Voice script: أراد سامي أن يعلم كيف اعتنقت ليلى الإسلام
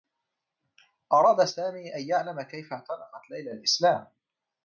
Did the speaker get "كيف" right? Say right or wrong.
right